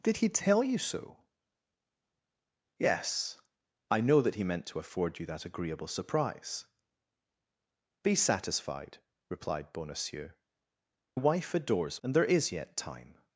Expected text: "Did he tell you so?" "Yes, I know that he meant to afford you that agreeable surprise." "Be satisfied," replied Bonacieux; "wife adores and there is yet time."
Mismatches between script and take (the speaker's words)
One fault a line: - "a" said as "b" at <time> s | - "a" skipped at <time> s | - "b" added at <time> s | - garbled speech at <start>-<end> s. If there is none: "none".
none